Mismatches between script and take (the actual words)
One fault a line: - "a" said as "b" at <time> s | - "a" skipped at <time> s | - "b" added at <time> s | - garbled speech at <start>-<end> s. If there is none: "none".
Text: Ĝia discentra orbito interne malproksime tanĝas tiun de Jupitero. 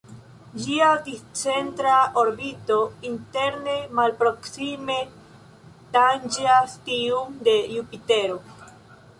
none